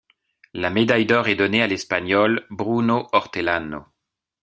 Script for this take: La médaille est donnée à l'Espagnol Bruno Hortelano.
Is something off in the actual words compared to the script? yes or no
yes